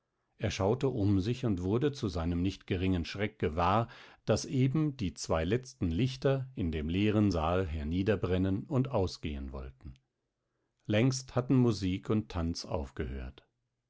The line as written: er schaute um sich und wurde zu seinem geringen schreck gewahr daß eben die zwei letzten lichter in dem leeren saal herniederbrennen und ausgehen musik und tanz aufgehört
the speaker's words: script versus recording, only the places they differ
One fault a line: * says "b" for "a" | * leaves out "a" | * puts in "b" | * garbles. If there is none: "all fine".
* puts in "nicht"
* puts in "wollten längst hatten"